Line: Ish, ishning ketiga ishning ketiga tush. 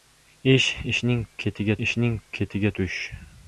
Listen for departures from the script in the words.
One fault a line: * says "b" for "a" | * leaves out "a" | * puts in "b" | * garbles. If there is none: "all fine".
all fine